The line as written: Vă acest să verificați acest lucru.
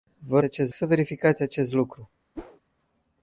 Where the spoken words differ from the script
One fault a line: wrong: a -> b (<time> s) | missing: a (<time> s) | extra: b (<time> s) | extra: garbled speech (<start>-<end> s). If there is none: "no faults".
no faults